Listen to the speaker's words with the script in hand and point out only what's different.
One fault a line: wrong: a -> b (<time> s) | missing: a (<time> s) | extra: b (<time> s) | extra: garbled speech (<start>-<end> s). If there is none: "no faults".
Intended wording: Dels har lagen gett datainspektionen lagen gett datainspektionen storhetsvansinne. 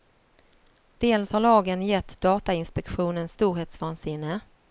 missing: lagen gett datainspektionen (3.3 s)